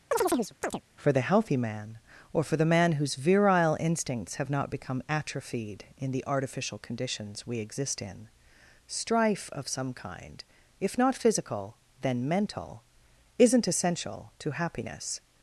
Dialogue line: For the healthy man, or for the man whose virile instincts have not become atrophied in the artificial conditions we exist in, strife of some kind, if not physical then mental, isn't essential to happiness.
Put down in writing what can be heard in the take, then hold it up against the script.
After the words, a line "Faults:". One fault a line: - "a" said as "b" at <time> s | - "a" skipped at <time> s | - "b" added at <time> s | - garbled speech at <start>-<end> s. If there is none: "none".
For the healthy man, or for the man whose virile instincts have not become atrophied in the artificial conditions we exist in, strife of some kind, if not physical then mental, isn't essential to happiness.
Faults:
none